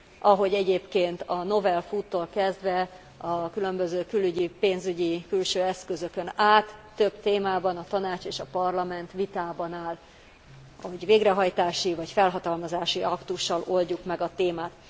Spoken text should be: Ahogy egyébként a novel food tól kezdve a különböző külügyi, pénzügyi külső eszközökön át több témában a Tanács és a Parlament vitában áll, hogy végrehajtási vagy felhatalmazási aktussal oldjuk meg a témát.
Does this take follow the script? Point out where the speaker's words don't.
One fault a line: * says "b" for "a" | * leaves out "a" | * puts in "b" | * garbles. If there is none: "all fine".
all fine